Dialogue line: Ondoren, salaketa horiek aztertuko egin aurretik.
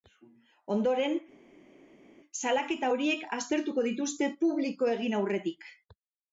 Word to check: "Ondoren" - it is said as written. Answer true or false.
true